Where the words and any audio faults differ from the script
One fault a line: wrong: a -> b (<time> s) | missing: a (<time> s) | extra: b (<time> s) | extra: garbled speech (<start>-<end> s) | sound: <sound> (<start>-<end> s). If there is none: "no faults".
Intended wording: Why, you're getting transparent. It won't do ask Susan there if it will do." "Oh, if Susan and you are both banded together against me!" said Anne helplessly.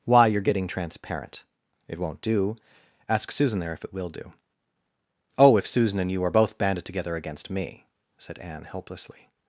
no faults